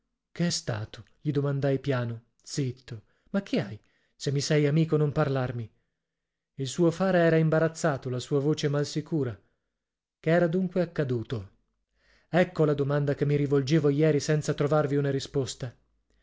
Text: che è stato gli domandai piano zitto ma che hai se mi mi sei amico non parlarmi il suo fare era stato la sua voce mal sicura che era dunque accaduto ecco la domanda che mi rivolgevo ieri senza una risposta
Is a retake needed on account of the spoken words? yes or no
yes